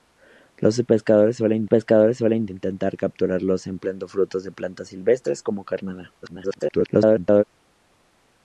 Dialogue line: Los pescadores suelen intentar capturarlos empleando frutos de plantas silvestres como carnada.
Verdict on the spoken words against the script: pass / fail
fail